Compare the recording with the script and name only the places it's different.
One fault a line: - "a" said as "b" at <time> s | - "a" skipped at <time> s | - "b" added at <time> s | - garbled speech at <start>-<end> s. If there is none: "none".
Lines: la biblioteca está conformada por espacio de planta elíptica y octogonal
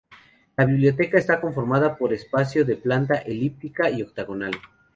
none